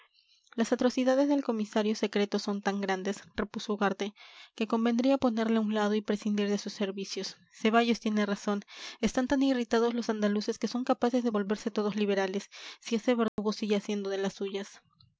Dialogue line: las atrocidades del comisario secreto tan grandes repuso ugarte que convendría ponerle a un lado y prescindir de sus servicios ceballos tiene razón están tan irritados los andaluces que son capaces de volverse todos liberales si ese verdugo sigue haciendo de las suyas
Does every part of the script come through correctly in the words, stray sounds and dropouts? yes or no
no